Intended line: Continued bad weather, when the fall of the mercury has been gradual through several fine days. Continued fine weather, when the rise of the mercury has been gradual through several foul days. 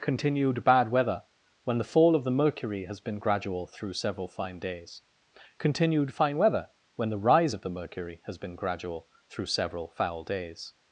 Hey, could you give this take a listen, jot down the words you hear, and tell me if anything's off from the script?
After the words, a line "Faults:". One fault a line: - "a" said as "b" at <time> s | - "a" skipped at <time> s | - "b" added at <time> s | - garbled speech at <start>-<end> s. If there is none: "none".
Continued bad weather, when the fall of the mercury has been gradual through several fine days. Continued fine weather, when the rise of the mercury has been gradual through several foul days.
Faults:
none